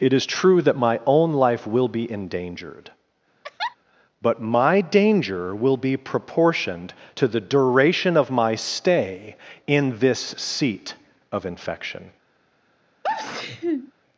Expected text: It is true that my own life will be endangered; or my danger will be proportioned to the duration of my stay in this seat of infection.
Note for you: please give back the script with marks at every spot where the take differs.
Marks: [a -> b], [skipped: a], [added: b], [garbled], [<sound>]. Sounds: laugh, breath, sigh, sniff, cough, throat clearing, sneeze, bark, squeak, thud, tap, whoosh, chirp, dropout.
It is true that my own life will be endangered; [laugh] [or -> but] my danger will be proportioned to the duration of my stay in this seat of infection. [sneeze]